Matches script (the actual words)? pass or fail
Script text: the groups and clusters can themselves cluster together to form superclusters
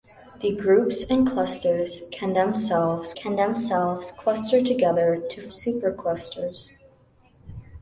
fail